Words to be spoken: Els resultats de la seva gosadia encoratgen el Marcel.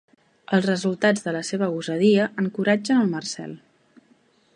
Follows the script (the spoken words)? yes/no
yes